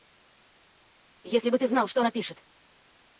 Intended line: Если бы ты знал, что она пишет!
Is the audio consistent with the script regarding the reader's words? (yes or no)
yes